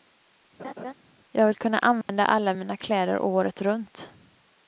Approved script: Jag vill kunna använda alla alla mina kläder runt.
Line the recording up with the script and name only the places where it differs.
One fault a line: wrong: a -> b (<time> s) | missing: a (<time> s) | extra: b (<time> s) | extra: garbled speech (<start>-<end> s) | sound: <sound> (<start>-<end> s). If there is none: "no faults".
sound: laugh (0.6-0.9 s)
sound: dropout (2.0-2.1 s)
missing: alla (2.5 s)
extra: året (3.2 s)